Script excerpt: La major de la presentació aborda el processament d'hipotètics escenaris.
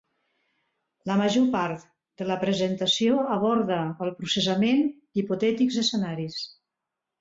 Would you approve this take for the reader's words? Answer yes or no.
no